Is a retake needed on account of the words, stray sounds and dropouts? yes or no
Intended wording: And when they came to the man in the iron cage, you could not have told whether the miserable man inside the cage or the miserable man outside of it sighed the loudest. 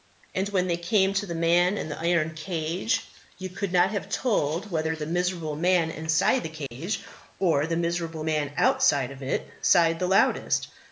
yes